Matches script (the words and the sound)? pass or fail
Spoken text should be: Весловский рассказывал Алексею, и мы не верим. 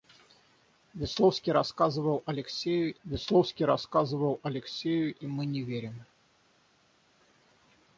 fail